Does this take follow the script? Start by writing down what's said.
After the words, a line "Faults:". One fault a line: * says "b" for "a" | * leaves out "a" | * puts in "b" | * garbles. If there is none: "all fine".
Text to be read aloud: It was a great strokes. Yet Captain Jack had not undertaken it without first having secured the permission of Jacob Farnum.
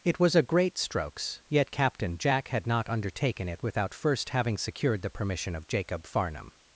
It was a great strokes. Yet Captain Jack had not undertaken it without first having secured the permission of Jacob Farnum.
Faults:
all fine